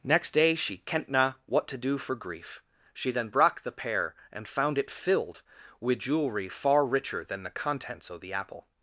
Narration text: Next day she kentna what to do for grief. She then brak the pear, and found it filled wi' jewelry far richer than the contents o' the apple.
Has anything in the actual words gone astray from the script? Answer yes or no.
no